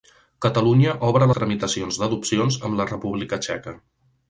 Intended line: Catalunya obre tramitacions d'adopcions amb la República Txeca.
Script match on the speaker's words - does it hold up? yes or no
yes